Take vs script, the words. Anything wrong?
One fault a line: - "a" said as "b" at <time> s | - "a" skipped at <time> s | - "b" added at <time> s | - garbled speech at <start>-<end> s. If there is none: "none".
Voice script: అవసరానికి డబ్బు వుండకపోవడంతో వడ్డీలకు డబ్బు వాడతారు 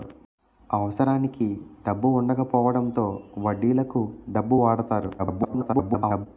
- garbled speech at 5.2-6.3 s